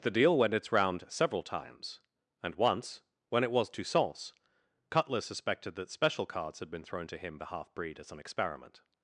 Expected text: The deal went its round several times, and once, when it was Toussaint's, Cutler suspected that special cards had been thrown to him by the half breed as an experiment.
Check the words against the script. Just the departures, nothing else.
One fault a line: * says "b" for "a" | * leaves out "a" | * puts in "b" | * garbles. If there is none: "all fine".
* leaves out "by"